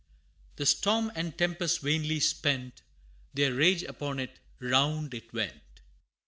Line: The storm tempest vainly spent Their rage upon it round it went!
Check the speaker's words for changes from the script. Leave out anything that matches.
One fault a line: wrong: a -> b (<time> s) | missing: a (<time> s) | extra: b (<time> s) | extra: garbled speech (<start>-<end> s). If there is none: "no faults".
extra: and (1.1 s)